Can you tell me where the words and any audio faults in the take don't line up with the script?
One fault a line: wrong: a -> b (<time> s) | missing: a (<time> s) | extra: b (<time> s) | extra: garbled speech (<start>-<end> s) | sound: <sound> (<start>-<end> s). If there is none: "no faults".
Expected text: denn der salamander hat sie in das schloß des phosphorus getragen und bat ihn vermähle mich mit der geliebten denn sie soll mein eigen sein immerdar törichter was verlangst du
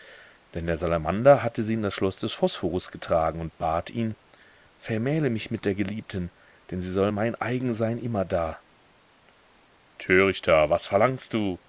wrong: hat -> hatte (1.4 s)